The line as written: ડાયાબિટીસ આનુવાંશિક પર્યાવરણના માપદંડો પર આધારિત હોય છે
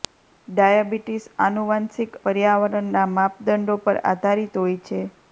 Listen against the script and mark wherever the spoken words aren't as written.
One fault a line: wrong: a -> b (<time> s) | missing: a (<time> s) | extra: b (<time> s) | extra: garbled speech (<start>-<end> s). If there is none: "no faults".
no faults